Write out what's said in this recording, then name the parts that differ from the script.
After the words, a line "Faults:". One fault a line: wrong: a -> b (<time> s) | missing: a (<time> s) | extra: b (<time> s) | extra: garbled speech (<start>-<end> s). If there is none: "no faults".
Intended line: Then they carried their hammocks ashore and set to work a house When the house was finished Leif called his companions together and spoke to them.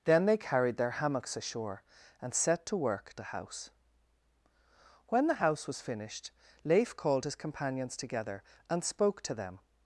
Then they carried their hammocks ashore and set to work a house When the house was finished Leif called his companions together and spoke to them.
Faults:
no faults